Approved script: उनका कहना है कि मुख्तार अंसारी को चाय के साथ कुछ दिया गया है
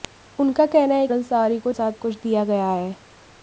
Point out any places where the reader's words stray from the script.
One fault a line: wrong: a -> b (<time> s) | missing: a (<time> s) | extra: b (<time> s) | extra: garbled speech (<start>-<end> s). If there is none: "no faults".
missing: कि मुख्तार (1.1 s)
missing: चाय के (1.7 s)